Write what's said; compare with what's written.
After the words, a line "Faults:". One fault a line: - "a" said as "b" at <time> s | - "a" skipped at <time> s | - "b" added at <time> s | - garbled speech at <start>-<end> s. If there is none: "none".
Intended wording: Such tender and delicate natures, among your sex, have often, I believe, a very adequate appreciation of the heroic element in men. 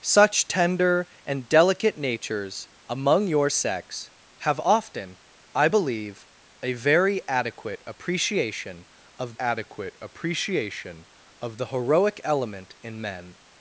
Such tender and delicate natures, among your sex, have often, I believe, a very adequate appreciation of adequate appreciation of the heroic element in men.
Faults:
- "adequate appreciation of" added at 9.4 s